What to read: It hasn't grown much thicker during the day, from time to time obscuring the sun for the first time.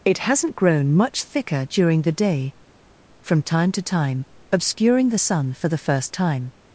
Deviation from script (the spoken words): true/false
false